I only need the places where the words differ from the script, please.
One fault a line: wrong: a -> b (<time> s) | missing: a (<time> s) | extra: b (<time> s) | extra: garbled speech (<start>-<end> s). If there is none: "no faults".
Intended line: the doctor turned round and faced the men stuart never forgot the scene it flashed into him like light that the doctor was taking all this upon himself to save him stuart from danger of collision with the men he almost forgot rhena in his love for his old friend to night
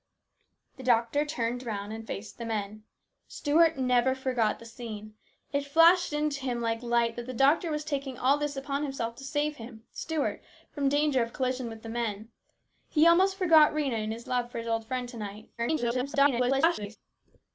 extra: garbled speech (15.6-17.0 s)